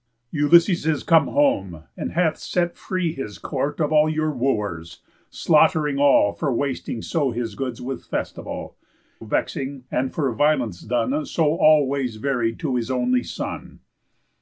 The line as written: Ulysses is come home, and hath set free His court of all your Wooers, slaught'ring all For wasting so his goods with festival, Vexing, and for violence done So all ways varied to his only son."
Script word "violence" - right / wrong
right